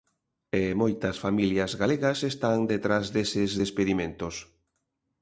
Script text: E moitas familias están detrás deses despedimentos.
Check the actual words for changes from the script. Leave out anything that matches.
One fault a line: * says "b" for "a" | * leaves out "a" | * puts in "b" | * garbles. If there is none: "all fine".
* puts in "galegas"